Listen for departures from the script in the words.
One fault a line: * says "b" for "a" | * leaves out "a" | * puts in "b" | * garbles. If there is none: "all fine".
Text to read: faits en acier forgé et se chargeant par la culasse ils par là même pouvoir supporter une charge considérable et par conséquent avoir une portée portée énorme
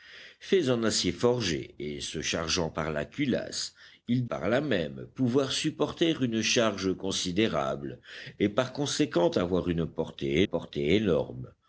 all fine